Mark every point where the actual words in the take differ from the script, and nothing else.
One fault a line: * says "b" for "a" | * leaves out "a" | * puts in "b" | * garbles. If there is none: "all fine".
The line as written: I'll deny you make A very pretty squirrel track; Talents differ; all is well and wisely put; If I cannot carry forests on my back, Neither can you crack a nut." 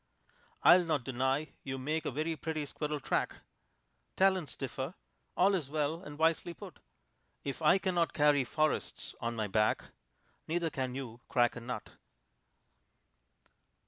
* puts in "not"